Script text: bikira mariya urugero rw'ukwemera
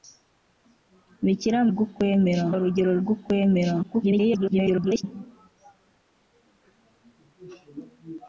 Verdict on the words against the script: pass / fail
fail